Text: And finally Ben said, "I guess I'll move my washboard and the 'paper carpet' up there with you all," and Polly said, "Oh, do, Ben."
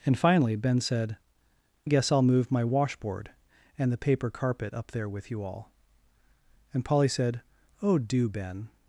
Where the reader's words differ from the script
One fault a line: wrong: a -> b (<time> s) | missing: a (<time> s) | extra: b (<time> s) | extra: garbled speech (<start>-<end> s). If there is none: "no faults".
missing: I (1.2 s)